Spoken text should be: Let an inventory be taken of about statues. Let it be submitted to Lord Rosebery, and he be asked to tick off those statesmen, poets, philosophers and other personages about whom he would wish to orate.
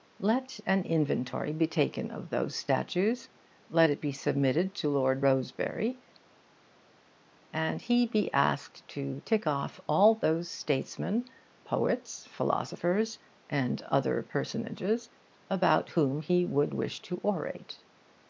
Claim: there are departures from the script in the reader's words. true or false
true